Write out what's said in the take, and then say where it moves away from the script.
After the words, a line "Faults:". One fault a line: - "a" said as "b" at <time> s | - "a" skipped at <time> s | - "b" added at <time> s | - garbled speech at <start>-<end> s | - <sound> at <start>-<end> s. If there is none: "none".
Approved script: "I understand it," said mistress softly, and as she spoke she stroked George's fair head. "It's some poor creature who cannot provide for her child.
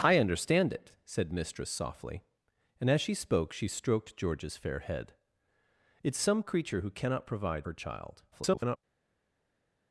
"I understand it," said mistress softly, and as she spoke she stroked George's fair head. "It's some creature who cannot provide her child. [garbled]
Faults:
- "poor" skipped at 6.4 s
- "for" skipped at 7.7 s
- garbled speech at 8.3-8.8 s